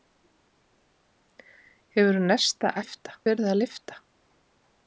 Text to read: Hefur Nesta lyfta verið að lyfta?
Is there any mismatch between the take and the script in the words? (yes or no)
no